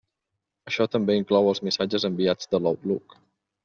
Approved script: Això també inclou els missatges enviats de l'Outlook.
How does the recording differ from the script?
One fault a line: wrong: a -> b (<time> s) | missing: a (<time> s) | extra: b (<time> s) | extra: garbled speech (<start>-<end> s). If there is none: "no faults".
no faults